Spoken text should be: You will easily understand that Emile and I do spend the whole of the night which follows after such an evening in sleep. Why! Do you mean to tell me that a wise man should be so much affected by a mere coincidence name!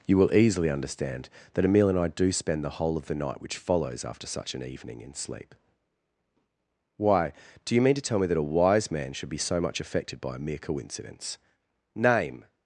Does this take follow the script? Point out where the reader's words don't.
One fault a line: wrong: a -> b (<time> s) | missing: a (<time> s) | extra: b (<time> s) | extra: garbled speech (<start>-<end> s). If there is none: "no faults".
no faults